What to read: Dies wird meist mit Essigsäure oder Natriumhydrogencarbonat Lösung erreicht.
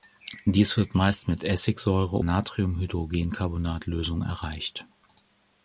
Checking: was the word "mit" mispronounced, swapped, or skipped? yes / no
no